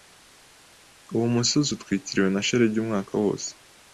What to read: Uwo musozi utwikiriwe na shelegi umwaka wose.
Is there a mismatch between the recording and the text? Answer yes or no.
no